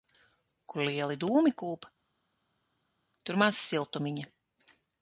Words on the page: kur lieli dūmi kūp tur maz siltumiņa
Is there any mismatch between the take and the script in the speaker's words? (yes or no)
no